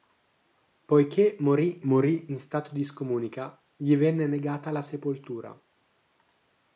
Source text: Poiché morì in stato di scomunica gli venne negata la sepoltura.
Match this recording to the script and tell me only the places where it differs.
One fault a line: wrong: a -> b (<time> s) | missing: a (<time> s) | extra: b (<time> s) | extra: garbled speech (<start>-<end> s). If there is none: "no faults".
extra: morì (1.9 s)